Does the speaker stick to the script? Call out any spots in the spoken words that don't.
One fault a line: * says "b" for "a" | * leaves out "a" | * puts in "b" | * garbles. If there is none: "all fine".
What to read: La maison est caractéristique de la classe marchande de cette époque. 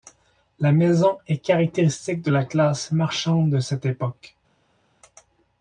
all fine